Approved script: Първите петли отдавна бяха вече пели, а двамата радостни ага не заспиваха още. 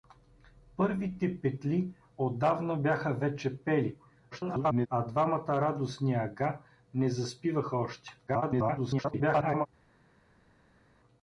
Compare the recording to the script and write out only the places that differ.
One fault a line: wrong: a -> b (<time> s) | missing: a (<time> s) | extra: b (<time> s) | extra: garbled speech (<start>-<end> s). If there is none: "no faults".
extra: garbled speech (4.3-4.9 s)
extra: garbled speech (8.3-9.7 s)